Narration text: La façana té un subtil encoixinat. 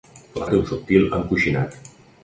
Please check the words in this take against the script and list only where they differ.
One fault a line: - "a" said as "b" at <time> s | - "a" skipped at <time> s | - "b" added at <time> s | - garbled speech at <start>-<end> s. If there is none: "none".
- "façana" skipped at 0.5 s